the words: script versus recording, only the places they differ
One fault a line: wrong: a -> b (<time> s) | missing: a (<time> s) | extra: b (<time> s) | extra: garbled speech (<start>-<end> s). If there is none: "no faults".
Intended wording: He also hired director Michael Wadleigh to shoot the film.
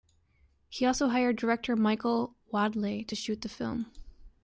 no faults